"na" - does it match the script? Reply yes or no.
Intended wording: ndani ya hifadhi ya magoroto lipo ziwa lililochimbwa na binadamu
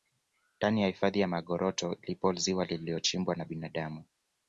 yes